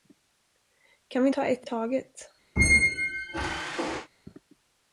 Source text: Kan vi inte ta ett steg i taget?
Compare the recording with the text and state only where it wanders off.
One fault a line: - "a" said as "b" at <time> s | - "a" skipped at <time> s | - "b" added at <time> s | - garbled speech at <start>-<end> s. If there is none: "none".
- "inte" skipped at 1.3 s
- "steg" skipped at 1.7 s